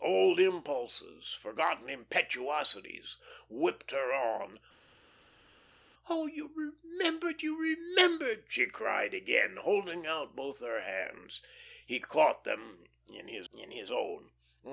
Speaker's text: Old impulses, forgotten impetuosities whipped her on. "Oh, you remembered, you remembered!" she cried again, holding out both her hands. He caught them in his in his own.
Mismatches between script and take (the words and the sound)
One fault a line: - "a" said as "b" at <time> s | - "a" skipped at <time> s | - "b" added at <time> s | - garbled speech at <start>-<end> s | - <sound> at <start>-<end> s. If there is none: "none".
none